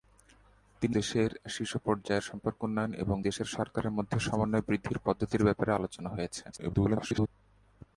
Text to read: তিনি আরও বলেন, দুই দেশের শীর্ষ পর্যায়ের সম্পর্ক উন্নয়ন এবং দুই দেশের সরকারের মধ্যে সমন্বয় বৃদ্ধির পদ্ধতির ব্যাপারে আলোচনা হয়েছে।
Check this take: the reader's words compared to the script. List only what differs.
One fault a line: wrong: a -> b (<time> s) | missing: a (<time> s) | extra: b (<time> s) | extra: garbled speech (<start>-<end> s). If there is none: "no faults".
missing: আরও বলেন দুই (0.9 s)
missing: দুই (3.2 s)
extra: garbled speech (6.5-7.3 s)